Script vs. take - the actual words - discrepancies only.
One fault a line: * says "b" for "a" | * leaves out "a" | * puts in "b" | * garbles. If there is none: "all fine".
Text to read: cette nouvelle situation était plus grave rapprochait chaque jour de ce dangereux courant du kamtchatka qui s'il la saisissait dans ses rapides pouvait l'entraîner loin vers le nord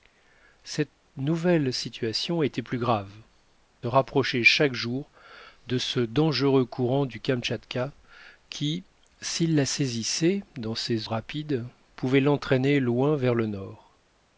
all fine